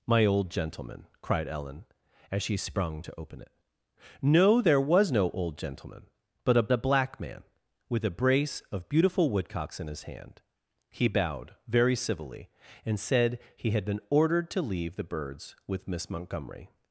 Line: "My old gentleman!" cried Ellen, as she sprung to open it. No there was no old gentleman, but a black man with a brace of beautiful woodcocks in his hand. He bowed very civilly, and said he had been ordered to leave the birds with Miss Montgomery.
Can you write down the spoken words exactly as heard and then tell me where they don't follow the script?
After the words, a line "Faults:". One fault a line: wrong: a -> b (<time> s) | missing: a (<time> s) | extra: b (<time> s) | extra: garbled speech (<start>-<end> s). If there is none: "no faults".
"My old gentleman!" cried Ellen, as she sprung to open it. No there was no old gentleman, but a a black man with a brace of beautiful woodcocks in his hand. He bowed very civilly, and said he had been ordered to leave the birds with Miss Montgomery.
Faults:
extra: a (6.7 s)